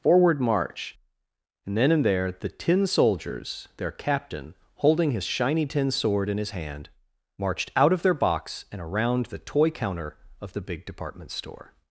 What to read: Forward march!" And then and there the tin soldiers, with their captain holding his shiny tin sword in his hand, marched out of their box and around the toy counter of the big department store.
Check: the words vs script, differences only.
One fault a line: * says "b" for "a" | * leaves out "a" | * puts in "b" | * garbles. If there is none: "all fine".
* leaves out "with"